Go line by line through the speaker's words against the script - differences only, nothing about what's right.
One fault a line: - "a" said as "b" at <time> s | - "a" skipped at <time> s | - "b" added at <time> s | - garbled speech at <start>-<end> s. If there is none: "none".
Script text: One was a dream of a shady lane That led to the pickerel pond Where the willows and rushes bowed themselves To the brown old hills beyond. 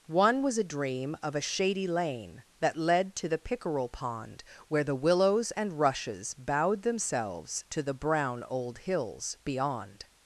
none